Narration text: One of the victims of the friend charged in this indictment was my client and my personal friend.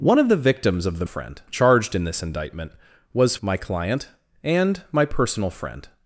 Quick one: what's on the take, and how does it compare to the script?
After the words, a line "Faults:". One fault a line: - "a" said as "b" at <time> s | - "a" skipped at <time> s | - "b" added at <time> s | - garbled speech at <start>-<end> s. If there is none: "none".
One of the victims of the friend charged in this indictment was my client and my personal friend.
Faults:
none